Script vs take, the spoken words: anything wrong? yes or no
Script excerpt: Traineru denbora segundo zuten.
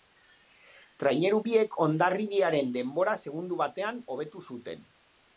yes